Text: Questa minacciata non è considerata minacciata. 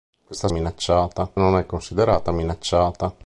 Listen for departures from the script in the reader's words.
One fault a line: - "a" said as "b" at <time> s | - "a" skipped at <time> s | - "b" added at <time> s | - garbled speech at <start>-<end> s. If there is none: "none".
none